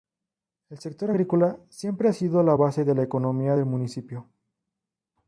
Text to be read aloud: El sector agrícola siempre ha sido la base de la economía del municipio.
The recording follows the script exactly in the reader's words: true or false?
true